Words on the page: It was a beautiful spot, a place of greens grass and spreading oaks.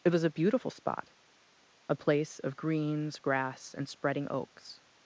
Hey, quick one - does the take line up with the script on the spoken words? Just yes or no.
yes